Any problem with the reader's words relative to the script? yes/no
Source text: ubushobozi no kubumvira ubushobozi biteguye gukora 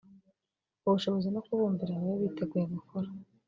yes